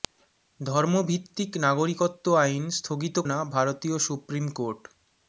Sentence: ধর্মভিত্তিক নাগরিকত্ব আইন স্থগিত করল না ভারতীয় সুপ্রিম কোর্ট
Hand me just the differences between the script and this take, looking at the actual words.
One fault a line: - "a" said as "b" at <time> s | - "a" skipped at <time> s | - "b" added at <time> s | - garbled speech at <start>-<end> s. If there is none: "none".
- "করল" skipped at 3.2 s